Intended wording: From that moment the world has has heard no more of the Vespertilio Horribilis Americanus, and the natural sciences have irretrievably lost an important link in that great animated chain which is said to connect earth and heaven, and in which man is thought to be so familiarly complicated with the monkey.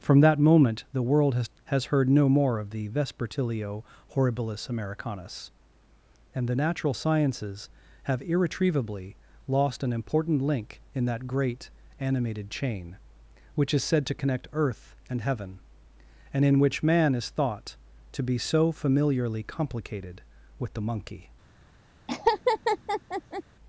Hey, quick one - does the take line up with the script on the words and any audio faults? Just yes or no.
no